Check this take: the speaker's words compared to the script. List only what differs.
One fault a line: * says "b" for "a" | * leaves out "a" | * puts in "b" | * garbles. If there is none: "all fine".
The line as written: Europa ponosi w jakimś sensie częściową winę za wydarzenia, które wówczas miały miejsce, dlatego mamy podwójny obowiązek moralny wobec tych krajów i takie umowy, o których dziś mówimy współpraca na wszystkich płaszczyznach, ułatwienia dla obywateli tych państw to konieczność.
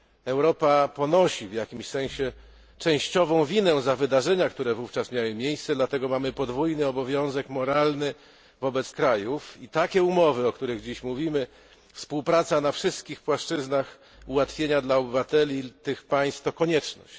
* leaves out "tych"